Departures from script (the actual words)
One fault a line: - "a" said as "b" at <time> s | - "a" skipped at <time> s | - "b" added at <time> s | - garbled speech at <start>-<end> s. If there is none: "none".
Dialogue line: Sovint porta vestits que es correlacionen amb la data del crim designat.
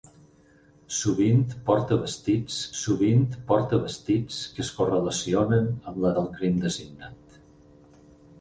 - "sovint porta vestits" added at 2.8 s
- "data" skipped at 6.1 s